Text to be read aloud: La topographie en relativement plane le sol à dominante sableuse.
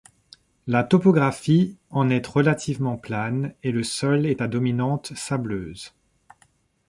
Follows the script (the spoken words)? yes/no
no